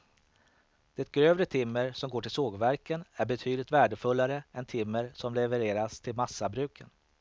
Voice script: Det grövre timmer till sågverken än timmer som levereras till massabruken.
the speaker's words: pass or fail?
fail